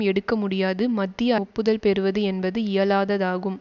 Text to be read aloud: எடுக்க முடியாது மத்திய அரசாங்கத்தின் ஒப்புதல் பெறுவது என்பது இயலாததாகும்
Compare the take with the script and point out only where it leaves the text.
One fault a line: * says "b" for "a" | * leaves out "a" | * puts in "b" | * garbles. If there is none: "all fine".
* leaves out "அரசாங்கத்தின்"